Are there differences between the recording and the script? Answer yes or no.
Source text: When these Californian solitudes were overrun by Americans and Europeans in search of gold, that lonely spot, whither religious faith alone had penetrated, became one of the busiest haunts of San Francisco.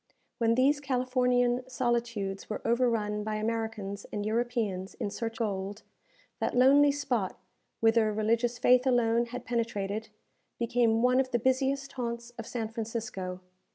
yes